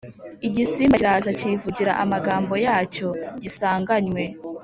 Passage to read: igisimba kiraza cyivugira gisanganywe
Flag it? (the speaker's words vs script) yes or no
yes